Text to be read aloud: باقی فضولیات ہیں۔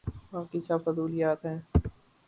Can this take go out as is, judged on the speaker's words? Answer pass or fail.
fail